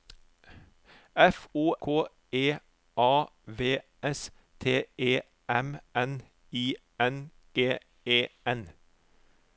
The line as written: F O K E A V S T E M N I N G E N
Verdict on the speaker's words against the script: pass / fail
pass